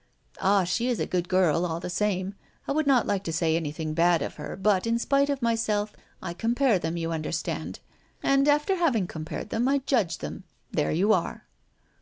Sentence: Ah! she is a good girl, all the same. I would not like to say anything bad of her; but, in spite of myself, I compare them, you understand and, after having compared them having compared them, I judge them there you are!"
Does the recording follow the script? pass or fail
fail